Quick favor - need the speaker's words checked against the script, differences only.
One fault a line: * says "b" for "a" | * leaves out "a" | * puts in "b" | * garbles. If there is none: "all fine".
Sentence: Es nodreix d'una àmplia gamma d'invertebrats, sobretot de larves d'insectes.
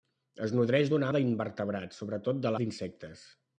* leaves out "àmplia gamma"
* leaves out "larves"